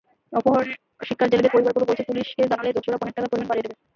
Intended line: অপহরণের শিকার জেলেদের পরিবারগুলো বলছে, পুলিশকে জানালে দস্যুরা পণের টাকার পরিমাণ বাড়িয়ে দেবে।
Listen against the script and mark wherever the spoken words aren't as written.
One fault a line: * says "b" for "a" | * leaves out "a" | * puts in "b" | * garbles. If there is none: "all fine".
all fine